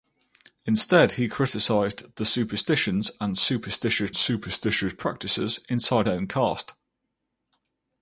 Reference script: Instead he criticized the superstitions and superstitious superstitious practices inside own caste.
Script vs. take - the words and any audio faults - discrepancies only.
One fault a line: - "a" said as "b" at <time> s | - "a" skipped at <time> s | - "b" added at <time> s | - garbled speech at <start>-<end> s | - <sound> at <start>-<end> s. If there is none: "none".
none